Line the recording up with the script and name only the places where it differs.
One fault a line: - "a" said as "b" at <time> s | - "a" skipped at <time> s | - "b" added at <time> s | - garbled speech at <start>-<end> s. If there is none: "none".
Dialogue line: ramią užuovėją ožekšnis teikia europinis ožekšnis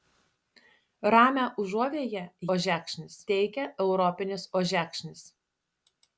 none